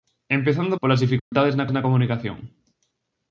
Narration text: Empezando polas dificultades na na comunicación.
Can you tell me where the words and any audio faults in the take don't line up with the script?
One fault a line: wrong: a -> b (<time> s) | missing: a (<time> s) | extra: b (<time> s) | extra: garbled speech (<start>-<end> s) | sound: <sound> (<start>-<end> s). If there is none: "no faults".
sound: dropout (1.2-1.3 s)